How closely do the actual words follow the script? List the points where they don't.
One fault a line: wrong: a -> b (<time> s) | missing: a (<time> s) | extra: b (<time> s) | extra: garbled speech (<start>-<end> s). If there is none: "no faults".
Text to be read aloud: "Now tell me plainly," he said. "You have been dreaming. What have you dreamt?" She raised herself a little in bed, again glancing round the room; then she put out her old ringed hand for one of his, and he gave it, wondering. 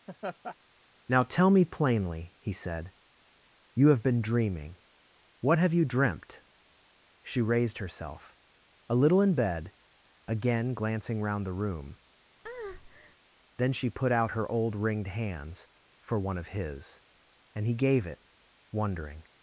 wrong: hand -> hands (15.1 s)